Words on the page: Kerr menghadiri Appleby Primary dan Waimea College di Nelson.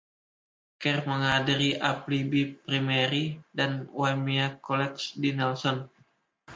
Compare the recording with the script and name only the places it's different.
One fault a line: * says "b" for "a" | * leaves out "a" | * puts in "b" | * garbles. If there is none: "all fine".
all fine